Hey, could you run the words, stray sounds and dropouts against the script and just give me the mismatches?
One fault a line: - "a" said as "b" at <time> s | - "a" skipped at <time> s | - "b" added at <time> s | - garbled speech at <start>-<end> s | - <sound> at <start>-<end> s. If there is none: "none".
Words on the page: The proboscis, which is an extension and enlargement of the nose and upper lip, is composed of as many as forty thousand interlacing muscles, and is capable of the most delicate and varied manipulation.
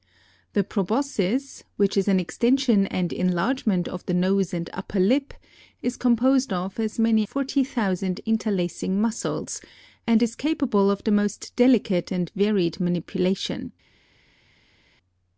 - "as" skipped at 7.3 s